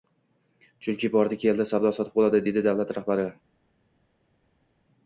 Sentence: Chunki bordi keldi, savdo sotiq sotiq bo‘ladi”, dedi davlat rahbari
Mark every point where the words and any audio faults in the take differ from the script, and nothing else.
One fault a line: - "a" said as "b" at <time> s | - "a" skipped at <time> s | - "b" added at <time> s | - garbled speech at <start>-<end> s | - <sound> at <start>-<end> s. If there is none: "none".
- "sotiq" skipped at 2.2 s